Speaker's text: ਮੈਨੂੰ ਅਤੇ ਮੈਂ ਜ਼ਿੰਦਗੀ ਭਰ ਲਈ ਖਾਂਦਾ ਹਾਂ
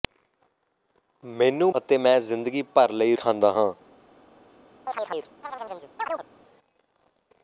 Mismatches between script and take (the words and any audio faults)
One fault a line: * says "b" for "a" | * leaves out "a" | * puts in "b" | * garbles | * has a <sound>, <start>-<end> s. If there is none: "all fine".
* has a chirp, 4.9-6.3 s